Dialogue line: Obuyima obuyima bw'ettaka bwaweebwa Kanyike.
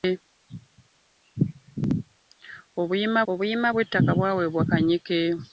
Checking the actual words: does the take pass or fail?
pass